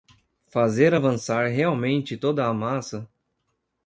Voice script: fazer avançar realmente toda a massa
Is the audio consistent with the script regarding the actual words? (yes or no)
yes